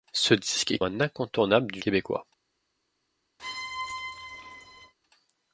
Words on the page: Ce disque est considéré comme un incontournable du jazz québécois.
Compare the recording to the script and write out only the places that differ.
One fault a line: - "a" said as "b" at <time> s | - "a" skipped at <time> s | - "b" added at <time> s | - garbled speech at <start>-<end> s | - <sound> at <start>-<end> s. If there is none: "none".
- "considéré comme" skipped at 0.8 s
- "jazz" skipped at 1.8 s
- squeak at 3.4-4.9 s